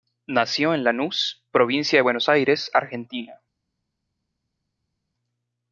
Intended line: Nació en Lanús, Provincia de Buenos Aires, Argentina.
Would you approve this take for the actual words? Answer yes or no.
yes